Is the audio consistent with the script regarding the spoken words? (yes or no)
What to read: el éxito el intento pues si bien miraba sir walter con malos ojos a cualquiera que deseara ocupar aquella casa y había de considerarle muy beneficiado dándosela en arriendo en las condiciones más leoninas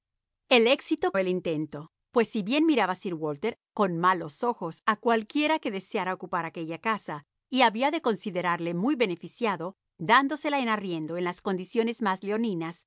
yes